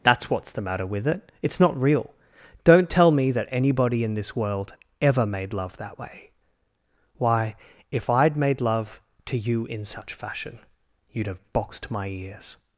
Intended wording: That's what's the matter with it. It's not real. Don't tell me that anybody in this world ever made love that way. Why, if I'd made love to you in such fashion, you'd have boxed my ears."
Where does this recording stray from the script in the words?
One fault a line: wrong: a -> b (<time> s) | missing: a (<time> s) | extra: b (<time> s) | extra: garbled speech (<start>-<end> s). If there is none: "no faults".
no faults